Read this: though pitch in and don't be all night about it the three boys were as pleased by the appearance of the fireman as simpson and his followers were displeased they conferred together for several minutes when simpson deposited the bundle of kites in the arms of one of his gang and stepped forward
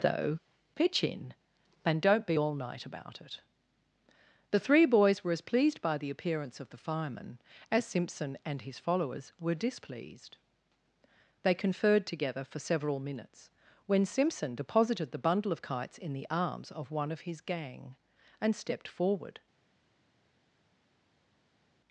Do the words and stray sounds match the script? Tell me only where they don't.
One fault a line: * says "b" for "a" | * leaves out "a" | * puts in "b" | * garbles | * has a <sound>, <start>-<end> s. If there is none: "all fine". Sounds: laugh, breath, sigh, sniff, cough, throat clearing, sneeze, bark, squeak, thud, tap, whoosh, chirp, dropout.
all fine